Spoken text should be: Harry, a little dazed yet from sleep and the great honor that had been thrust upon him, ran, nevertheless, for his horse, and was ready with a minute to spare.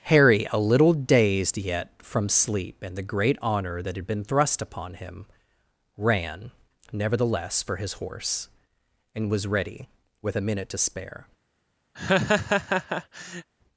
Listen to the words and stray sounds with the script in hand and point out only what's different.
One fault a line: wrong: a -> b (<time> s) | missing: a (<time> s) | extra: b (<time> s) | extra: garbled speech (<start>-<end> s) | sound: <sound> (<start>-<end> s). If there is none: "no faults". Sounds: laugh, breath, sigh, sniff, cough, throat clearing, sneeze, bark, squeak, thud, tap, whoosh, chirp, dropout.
sound: laugh (11.9-13.5 s)